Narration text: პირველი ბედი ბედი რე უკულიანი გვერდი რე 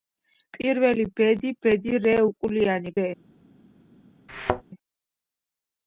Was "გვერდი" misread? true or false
true